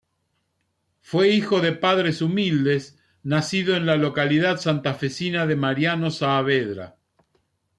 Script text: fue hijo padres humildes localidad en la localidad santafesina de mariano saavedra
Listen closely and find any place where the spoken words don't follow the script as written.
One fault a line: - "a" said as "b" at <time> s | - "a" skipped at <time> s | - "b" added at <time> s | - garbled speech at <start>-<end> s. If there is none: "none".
- "de" added at 1.6 s
- "localidad" said as "nacido" at 3.2 s